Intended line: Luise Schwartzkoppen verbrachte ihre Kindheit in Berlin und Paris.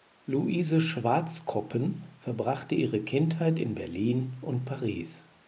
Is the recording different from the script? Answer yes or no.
no